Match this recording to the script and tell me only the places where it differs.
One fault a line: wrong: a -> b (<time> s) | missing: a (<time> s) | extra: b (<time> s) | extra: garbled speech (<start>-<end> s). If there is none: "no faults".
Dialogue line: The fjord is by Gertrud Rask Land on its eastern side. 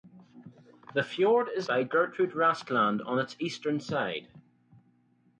no faults